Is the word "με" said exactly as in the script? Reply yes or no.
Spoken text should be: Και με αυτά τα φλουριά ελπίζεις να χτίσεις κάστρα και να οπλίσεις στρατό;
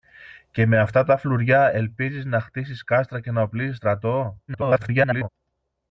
yes